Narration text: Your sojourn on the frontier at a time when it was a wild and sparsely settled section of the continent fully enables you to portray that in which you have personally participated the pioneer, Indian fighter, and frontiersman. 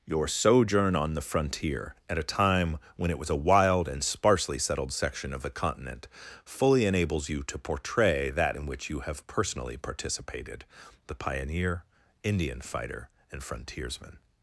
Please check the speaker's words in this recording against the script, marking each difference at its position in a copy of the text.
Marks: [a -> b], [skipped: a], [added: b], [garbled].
Your sojourn on the frontier at a time when it was a wild and sparsely settled section of the continent fully enables you to portray that in which you have personally participated the pioneer, Indian fighter, and frontiersman.